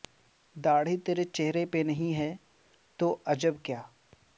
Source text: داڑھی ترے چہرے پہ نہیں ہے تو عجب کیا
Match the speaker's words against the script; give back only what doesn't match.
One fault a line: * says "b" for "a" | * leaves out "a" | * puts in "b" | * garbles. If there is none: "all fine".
all fine